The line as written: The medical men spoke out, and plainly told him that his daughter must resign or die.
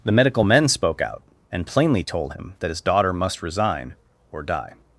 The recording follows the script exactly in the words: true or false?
true